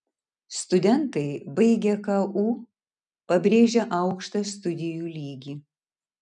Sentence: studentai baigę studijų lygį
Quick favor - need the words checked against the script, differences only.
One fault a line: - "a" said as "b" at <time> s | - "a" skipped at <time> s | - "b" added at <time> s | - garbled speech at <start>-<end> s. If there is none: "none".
- "ku pabrėžia aukštą" added at 2.1 s